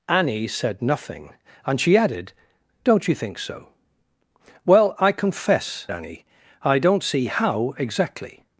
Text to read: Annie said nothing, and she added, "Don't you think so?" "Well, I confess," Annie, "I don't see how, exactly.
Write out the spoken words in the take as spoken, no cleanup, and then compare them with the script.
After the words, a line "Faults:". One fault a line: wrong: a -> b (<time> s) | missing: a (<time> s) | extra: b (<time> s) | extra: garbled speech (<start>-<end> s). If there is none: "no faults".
Annie said nothing, and she added, "Don't you think so?" "Well, I confess," Annie, "I don't see how, exactly.
Faults:
no faults